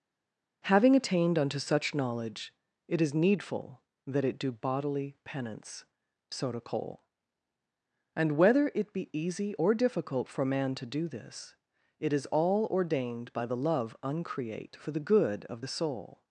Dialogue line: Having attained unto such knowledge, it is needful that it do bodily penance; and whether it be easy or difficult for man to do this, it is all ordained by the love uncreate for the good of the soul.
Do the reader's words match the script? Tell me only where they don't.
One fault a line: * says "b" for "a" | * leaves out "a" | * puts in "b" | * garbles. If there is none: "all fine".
* puts in "soda cole"